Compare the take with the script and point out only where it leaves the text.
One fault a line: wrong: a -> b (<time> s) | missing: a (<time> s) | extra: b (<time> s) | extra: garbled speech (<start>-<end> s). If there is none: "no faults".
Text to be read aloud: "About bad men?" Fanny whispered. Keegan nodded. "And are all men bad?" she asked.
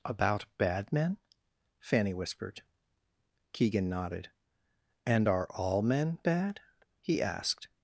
wrong: she -> he (7.0 s)